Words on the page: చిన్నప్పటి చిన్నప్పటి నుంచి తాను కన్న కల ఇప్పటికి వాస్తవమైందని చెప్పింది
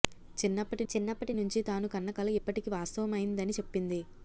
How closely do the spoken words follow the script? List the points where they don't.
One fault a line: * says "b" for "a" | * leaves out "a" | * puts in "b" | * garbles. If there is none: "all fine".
all fine